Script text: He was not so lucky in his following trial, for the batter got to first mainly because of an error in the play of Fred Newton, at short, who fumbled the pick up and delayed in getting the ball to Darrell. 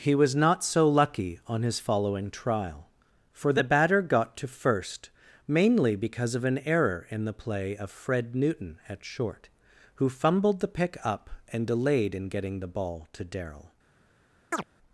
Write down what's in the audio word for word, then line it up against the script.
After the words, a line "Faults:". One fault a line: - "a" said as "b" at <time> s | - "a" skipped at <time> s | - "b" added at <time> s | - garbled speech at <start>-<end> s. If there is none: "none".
He was not so lucky on his following trial, for the batter got to first mainly because of an error in the play of Fred Newton, at short, who fumbled the pick up and delayed in getting the ball to Darrell.
Faults:
- "in" said as "on" at 1.4 s